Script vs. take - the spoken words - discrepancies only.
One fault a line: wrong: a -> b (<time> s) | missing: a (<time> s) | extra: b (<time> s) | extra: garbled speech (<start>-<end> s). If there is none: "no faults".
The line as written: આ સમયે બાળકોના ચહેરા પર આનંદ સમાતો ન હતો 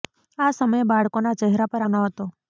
missing: આનંદ સમાતો (1.9 s)